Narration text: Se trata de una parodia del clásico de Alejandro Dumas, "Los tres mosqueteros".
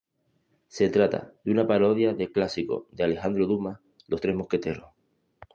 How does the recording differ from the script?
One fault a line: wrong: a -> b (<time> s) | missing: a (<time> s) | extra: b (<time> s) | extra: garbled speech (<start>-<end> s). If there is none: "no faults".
no faults